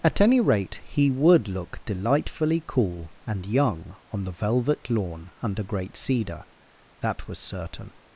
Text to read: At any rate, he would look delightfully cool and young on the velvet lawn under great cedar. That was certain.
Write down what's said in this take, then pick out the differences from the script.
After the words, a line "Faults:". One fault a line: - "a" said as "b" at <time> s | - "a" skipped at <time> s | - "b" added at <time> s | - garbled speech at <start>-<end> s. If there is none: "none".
At any rate, he would look delightfully cool and young on the velvet lawn under great cedar. That was certain.
Faults:
none